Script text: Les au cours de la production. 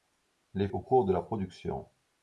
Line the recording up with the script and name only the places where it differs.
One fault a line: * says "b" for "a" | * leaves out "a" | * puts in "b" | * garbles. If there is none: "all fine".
all fine